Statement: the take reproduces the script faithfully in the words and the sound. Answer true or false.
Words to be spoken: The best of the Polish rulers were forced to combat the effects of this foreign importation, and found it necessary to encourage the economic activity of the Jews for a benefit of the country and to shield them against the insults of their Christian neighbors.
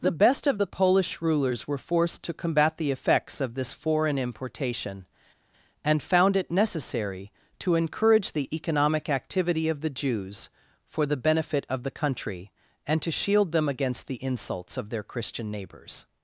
false